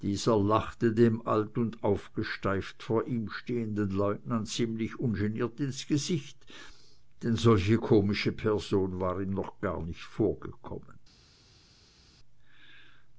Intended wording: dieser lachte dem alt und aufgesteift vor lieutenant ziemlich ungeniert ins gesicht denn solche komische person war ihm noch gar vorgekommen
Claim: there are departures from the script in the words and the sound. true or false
true